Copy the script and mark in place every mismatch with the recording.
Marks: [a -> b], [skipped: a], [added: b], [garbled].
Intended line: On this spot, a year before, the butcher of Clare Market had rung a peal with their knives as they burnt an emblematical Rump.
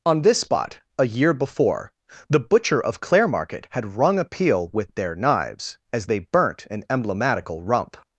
On this spot, a year before, the butcher of Clare Market had rung a peal with their knives as they burnt an emblematical Rump.